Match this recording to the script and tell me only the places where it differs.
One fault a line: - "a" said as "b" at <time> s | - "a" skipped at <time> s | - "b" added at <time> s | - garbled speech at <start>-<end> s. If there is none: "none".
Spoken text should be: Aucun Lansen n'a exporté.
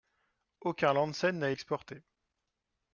none